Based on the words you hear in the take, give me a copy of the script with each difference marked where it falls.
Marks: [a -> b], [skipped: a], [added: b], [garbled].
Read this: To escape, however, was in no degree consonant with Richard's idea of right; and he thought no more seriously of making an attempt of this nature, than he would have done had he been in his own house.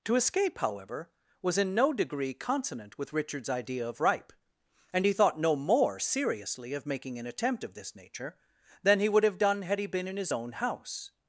To escape, however, was in no degree consonant with Richard's idea of [right; -> ripe] and he thought no more seriously of making an attempt of this nature, than he would have done had he been in his own house.